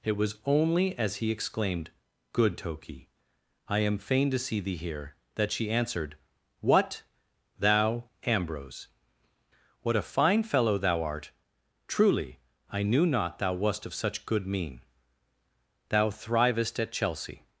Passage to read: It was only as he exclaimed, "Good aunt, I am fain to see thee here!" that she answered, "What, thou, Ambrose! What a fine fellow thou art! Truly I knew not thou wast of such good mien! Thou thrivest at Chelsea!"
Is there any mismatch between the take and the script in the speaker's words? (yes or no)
yes